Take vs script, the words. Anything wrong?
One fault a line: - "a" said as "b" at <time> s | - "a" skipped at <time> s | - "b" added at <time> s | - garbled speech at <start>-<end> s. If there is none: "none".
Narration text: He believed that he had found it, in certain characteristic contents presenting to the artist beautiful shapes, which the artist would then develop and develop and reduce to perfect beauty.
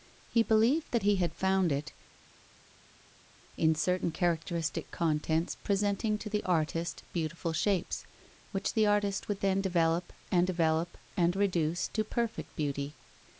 none